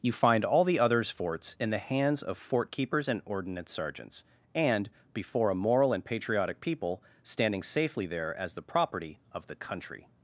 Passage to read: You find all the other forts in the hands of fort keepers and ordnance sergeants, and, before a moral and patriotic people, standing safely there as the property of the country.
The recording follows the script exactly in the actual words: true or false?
false